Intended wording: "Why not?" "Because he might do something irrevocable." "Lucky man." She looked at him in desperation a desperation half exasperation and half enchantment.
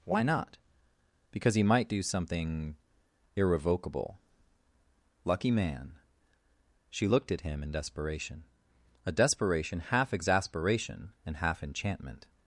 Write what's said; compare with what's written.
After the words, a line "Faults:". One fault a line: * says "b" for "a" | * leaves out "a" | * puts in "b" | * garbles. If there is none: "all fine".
"Why not?" "Because he might do something irrevocable." "Lucky man." She looked at him in desperation a desperation half exasperation and half enchantment.
Faults:
all fine